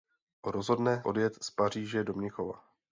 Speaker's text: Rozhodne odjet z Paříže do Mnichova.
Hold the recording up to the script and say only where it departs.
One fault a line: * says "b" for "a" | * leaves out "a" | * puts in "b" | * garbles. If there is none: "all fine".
all fine